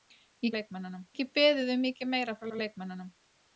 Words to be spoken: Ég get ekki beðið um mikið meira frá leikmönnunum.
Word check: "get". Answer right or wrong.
wrong